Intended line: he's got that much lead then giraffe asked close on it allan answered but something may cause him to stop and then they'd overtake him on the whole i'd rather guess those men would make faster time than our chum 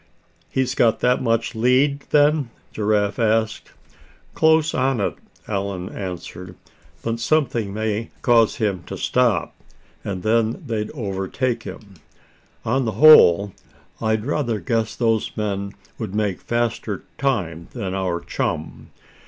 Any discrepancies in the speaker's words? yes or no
no